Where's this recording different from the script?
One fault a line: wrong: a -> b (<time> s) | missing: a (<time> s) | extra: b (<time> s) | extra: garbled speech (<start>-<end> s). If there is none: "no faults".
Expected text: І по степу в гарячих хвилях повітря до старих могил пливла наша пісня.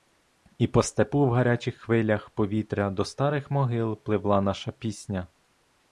no faults